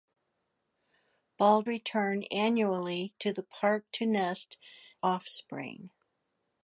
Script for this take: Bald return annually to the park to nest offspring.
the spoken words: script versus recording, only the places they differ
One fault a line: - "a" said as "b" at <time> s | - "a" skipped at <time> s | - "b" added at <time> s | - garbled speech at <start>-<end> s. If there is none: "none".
none